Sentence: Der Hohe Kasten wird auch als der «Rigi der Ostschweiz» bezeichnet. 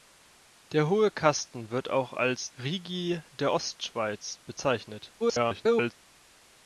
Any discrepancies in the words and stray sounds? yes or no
yes